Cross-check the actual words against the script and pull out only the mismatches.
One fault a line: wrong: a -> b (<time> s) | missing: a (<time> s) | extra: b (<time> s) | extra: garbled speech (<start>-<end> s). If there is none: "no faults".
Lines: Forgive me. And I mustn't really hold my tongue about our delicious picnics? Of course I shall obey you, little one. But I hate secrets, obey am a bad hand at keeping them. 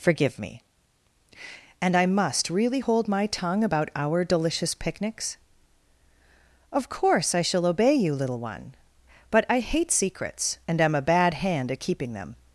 wrong: mustn't -> must (2.1 s)
wrong: obey -> and (10.7 s)